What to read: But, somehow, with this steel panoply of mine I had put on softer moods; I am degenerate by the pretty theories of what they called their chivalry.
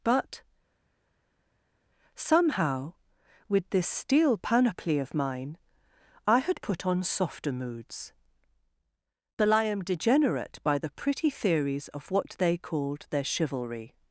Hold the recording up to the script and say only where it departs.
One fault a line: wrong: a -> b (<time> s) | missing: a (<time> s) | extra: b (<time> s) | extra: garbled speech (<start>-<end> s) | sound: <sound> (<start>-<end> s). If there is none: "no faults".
extra: but (9.4 s)